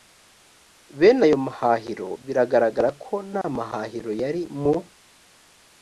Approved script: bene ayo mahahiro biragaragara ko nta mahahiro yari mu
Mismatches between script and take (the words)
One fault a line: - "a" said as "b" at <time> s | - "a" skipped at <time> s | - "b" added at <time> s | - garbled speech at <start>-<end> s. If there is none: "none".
none